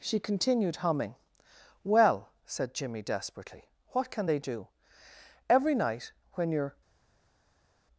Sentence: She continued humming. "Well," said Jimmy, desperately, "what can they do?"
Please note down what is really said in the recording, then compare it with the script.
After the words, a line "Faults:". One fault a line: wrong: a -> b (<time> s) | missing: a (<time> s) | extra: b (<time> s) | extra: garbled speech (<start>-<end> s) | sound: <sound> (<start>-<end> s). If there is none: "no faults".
She continued humming. "Well," said Jimmy, desperately, "what can they do?" "Every night when you're
Faults:
extra: Every night when you're (5.5 s)